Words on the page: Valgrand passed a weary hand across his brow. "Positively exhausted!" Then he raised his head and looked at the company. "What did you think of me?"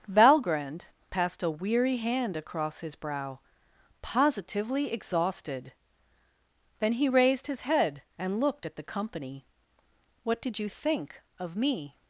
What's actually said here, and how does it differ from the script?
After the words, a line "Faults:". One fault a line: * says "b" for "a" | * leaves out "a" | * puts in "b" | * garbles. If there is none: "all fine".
Valgrand passed a weary hand across his brow. "Positively exhausted!" Then he raised his head and looked at the company. "What did you think of me?"
Faults:
all fine